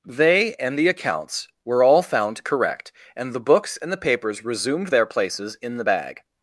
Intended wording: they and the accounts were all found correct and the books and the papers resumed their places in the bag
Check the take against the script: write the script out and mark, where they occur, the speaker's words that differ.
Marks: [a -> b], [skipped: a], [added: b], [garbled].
they and the accounts were all found correct and the books and the papers resumed their places in the bag